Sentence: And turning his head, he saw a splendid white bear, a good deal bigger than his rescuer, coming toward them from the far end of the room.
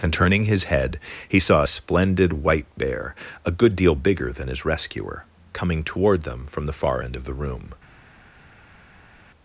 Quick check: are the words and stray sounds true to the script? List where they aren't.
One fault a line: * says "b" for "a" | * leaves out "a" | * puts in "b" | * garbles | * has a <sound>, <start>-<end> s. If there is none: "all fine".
all fine